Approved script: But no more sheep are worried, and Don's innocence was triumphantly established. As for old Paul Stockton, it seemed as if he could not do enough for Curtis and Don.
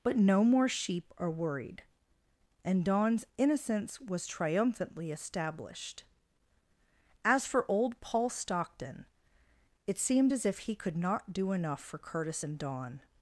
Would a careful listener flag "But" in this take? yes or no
no